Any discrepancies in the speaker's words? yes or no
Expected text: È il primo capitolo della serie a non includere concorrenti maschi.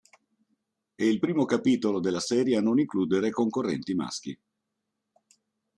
no